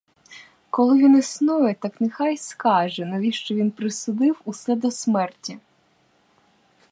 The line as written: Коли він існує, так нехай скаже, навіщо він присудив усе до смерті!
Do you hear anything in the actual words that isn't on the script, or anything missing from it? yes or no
no